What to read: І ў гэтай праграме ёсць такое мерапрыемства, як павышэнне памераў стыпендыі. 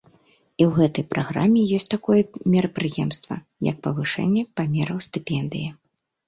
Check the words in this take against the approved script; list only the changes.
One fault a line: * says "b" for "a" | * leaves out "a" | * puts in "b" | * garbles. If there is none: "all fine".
all fine